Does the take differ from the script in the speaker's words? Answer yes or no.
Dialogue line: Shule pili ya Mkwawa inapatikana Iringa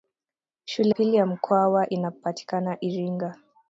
no